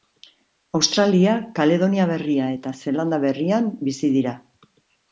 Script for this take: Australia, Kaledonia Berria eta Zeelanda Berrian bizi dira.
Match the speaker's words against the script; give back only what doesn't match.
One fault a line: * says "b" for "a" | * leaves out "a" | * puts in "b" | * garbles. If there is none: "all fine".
all fine